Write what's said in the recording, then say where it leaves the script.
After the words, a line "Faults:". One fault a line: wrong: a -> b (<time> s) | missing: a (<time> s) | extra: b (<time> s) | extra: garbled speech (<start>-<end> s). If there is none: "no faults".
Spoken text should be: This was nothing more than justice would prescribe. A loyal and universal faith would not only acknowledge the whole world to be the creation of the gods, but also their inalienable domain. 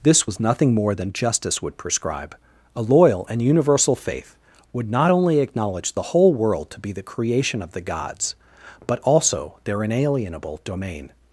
This was nothing more than justice would prescribe. A loyal and universal faith would not only acknowledge the whole world to be the creation of the gods, but also their inalienable domain.
Faults:
no faults